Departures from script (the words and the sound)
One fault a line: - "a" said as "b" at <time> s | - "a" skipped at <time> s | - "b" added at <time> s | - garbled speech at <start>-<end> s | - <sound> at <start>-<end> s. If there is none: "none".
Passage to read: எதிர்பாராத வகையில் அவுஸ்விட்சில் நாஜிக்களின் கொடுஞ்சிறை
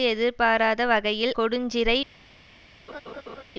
- "அவுஸ்விட்சில் நாஜிக்களின்" skipped at 1.3 s
- laugh at 2.9-3.4 s